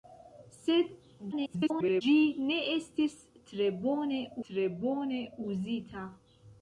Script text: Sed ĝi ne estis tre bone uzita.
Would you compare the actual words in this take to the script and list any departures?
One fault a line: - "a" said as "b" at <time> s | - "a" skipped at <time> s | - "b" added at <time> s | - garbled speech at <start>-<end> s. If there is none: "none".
- garbled speech at 1.3-2.0 s
- "tre bone" added at 4.5 s